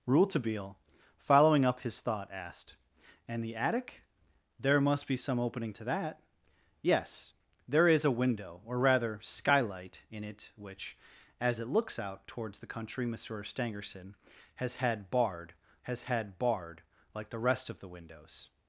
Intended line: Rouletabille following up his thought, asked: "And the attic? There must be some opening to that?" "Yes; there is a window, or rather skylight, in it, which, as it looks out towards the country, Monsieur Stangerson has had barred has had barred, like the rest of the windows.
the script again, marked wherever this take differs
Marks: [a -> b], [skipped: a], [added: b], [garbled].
Rouletabille following up his thought, asked: "And the attic? There must be some opening to that?" "Yes; there is a window, or rather skylight, in it, which, as it looks out towards the country, Monsieur Stangerson has had barred has had barred, like the rest of the windows.